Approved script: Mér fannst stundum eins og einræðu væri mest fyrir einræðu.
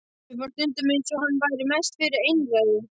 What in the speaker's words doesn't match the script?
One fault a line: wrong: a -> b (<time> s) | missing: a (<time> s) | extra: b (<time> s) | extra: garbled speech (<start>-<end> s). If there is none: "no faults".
wrong: einræðu -> hann (1.2 s)